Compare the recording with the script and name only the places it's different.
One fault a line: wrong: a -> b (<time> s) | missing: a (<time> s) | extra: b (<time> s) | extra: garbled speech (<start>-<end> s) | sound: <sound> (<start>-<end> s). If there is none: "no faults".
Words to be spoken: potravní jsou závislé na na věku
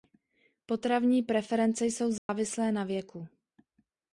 extra: preference (1.2 s)
sound: dropout (2.2-2.3 s)
missing: na (2.8 s)